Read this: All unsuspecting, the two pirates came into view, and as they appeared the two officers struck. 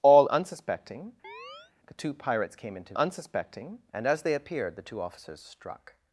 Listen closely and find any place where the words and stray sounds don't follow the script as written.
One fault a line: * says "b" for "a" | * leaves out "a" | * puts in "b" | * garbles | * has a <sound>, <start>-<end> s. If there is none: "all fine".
* has a chirp, 1.2-1.7 s
* says "unsuspecting" for "view"